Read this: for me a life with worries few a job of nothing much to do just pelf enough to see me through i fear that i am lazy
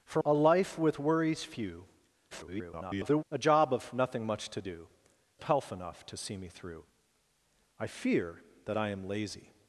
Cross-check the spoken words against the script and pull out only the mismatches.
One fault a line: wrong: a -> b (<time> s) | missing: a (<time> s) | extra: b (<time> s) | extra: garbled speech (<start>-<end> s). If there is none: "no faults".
missing: me (0.2 s)
extra: garbled speech (2.3-3.2 s)
missing: just (4.9 s)